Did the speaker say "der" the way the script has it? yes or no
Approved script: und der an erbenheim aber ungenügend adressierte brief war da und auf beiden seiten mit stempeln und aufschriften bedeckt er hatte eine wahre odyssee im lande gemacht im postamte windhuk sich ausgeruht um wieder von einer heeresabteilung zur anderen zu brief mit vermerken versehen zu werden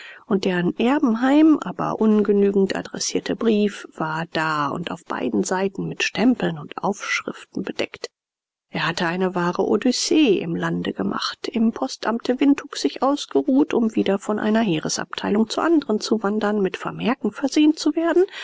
yes